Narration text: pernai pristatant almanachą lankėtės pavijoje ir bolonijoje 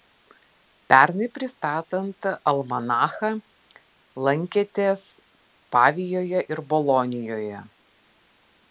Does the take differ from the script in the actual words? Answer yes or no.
no